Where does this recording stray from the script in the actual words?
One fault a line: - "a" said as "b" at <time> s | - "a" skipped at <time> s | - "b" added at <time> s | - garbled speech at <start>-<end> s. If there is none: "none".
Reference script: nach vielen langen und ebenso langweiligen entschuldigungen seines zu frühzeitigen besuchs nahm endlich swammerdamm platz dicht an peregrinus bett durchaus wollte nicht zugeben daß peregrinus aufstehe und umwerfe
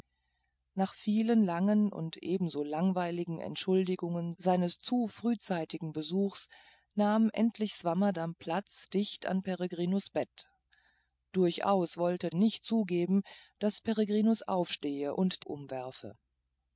none